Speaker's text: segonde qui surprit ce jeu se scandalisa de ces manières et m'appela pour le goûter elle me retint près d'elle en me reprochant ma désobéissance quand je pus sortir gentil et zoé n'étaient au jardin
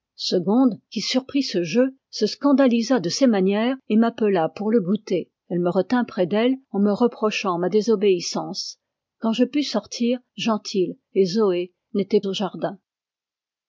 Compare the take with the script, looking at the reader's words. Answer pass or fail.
pass